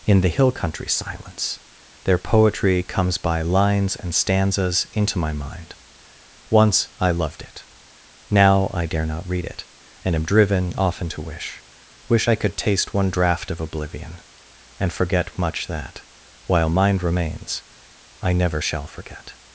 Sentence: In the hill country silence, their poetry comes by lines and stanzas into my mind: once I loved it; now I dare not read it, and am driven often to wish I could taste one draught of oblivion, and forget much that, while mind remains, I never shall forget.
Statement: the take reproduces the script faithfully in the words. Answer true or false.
false